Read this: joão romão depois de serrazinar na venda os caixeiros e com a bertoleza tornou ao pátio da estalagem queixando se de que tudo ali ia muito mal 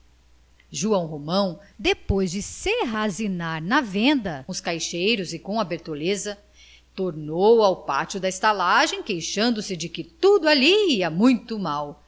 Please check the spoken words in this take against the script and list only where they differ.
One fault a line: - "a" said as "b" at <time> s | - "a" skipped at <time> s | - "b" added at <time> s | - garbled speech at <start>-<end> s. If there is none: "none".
none